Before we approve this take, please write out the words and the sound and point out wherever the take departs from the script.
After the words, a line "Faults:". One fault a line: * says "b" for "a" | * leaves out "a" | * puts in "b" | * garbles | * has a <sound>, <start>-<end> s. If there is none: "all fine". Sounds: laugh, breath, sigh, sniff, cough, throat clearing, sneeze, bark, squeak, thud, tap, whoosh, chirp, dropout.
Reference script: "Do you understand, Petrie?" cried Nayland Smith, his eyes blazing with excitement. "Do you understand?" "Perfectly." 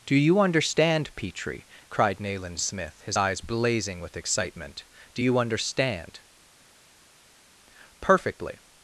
"Do you understand, Petrie?" cried Nayland Smith, his eyes blazing with excitement. "Do you understand?" "Perfectly."
Faults:
all fine